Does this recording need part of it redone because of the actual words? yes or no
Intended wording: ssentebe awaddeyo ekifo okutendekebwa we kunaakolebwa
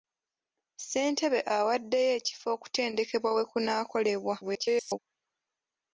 yes